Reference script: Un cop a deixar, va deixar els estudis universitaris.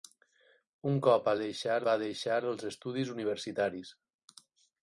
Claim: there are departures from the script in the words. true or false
false